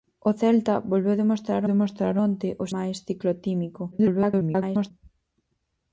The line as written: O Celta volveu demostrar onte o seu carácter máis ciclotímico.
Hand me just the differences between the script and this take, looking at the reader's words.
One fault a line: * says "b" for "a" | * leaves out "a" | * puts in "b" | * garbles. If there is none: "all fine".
* puts in "demostrar"
* leaves out "seu carácter"
* garbles